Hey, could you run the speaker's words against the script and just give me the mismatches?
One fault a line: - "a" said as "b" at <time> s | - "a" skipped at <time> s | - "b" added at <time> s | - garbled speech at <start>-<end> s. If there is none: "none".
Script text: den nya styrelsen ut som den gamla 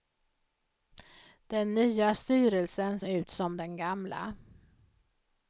none